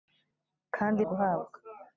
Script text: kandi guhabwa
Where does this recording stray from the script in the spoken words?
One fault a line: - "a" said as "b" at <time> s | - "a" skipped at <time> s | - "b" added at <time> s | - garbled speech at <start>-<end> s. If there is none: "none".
none